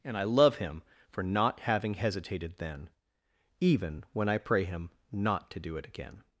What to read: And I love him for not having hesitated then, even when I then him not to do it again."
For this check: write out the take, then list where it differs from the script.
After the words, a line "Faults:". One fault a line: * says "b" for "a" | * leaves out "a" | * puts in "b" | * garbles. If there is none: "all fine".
And I love him for not having hesitated then, even when I pray him not to do it again."
Faults:
* says "pray" for "then"